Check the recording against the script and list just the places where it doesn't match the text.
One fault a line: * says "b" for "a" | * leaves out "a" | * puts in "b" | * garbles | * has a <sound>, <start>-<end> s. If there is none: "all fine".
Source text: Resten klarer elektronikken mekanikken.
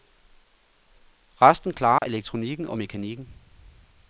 * has a dropout, 2.0-2.0 s
* puts in "og"